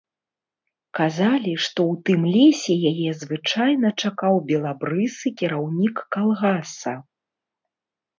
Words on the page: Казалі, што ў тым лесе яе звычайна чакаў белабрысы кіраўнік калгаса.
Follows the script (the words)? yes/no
yes